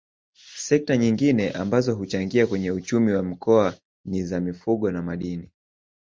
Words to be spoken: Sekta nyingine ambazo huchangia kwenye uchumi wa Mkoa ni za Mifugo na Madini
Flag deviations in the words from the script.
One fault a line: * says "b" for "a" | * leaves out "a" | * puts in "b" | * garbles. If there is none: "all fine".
all fine